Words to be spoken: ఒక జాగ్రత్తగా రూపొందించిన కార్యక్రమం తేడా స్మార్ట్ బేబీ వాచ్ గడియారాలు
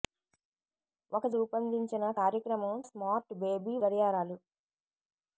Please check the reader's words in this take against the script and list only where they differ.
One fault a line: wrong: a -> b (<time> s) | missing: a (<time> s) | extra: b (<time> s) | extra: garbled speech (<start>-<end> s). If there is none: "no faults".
missing: జాగ్రత్తగా (1.2 s)
missing: తేడా (2.8 s)
missing: వాచ్ (3.8 s)